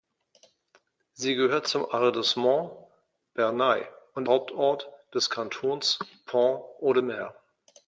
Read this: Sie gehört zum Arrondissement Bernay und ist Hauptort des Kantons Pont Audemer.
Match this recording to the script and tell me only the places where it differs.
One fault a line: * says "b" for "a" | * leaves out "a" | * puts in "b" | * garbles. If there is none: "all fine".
* leaves out "ist"